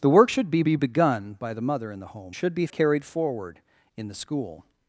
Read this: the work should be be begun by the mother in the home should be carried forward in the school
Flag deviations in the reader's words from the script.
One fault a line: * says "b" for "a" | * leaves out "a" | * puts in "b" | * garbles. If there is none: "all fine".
all fine